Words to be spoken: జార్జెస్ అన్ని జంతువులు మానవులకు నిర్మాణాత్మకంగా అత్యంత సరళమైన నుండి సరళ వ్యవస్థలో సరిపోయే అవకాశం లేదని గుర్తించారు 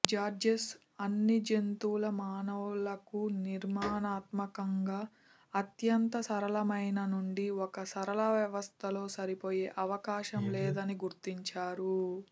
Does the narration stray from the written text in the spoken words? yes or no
yes